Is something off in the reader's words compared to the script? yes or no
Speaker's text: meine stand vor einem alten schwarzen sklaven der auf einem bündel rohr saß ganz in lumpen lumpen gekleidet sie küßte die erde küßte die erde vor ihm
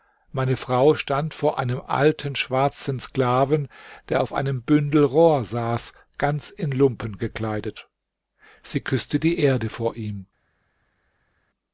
yes